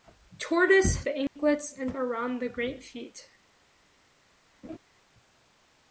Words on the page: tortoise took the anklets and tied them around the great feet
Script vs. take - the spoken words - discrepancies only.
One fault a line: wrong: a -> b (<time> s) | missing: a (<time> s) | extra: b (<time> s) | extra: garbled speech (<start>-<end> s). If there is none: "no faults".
missing: took (1.1 s)
missing: tied them (2.0 s)